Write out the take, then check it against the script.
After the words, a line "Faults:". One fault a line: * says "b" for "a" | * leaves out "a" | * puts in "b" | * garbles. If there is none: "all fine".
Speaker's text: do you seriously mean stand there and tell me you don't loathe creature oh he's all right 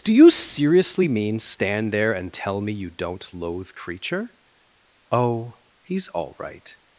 do you seriously mean stand there and tell me you don't loathe creature oh he's all right
Faults:
all fine